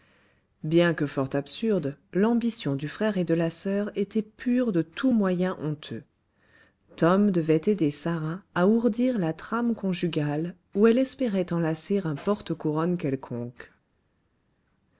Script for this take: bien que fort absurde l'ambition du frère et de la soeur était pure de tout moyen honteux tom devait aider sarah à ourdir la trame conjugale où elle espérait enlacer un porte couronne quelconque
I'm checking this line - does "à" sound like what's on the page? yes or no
yes